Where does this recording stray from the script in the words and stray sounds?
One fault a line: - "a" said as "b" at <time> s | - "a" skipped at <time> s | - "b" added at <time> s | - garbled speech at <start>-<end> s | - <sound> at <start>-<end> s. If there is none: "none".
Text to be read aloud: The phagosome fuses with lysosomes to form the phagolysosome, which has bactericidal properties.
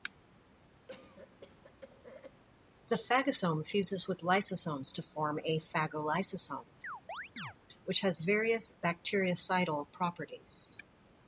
- cough at 0.9-2.4 s
- "the" said as "a" at 5.4 s
- chirp at 6.8-7.5 s
- "various" added at 8.2 s